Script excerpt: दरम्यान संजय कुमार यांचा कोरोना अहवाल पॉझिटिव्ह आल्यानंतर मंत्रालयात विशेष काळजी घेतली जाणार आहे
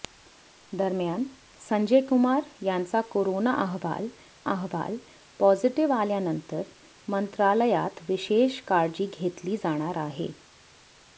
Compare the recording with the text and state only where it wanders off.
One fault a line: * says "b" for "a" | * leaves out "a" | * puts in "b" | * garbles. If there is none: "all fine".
* puts in "अहवाल"